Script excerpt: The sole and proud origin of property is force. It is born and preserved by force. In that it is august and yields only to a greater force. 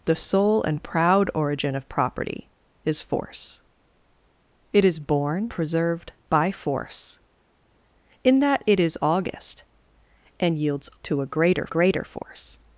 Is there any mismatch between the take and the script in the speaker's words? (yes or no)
yes